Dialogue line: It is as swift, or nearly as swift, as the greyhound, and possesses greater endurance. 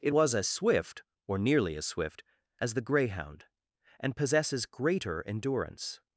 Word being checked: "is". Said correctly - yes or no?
no